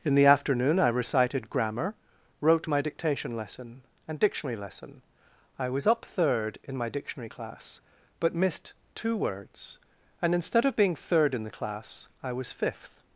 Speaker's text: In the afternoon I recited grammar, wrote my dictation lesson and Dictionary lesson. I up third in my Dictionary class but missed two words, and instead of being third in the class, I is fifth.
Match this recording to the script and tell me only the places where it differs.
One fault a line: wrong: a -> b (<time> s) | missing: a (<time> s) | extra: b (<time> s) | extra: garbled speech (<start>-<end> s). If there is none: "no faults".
extra: was (5.7 s)
wrong: is -> was (12.3 s)